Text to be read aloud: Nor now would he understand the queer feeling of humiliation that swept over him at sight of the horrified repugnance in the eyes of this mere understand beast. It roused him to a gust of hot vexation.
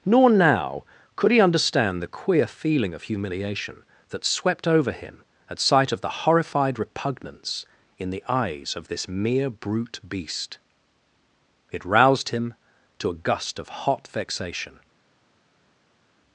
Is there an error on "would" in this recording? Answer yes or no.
yes